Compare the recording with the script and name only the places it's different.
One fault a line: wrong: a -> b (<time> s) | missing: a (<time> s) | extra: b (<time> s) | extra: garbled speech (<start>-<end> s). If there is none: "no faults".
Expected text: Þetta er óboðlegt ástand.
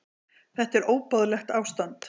no faults